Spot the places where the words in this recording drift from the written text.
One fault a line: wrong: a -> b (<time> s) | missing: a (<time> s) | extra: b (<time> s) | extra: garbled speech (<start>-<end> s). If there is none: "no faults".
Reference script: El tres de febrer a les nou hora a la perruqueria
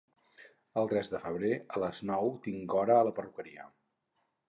extra: tinc (2.4 s)